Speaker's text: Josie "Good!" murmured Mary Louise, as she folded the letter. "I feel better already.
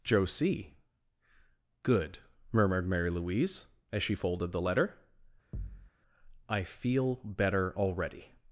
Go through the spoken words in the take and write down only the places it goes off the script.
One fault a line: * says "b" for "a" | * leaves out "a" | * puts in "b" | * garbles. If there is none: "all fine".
all fine